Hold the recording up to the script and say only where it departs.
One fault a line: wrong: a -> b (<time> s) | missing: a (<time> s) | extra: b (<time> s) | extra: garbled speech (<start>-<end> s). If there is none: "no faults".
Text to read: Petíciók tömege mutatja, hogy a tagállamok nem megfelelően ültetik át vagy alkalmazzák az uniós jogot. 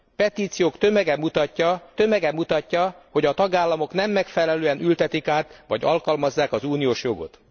extra: tömege mutatja (1.9 s)